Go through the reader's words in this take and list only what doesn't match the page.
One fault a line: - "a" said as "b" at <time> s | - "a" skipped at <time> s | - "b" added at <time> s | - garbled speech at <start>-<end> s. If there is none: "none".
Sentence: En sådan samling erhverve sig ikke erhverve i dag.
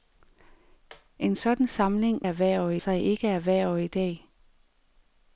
none